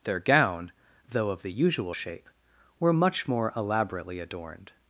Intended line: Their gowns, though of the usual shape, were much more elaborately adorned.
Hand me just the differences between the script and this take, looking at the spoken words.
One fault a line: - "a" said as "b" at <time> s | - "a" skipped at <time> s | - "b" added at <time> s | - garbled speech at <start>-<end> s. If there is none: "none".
- "gowns" said as "gown" at 0.2 s